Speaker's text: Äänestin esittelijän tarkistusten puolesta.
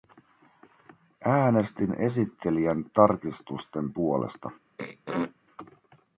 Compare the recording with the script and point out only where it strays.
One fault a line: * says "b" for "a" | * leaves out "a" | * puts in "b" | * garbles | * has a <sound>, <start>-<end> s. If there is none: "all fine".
* has a throat clearing, 4.8-5.3 s